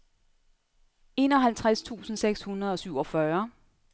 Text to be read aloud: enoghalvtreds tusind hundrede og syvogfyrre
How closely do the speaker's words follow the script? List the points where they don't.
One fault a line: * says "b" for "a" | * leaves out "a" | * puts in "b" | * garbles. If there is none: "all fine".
* puts in "seks"